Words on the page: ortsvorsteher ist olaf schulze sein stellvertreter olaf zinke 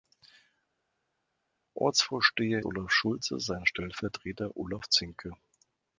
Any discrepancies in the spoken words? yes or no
yes